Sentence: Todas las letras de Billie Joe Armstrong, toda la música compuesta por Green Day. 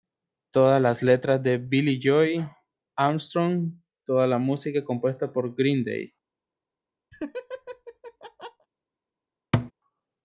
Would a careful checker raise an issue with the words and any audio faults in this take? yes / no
yes